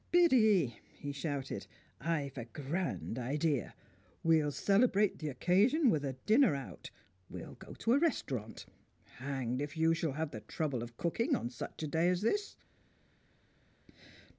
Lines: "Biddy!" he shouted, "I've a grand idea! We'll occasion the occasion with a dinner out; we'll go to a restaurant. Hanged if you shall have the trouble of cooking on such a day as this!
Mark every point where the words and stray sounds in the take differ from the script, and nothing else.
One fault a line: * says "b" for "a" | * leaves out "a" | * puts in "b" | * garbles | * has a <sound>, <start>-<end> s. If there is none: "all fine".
* says "celebrate" for "occasion"